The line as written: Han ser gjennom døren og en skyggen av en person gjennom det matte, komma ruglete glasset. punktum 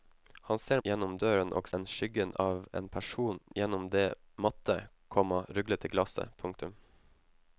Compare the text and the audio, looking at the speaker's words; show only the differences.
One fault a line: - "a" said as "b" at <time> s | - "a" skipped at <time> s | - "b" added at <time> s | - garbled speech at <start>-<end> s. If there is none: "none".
none